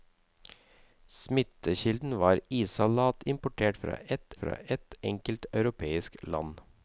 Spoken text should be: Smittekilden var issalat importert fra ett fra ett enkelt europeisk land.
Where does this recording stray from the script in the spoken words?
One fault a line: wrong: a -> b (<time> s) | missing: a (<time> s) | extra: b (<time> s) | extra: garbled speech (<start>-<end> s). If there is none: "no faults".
no faults